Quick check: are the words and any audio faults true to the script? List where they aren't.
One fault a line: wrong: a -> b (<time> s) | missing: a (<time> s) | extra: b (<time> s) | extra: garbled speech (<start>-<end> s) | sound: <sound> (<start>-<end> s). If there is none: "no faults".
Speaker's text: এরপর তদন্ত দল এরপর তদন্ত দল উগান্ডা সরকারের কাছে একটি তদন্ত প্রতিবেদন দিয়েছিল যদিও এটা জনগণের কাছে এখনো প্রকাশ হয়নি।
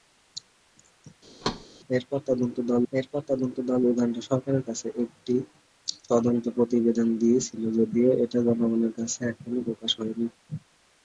sound: thud (1.4-1.7 s)